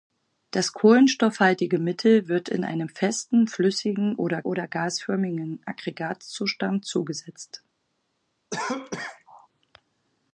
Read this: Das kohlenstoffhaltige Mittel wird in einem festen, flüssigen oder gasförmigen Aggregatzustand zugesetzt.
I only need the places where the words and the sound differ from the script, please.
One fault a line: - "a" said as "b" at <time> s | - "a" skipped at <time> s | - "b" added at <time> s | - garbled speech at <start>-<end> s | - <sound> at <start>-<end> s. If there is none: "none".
- "oder" added at 4.4 s
- cough at 8.5-9.5 s